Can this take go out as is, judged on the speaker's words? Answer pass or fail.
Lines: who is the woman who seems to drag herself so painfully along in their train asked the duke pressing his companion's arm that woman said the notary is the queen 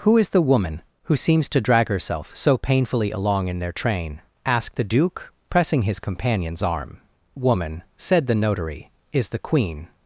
fail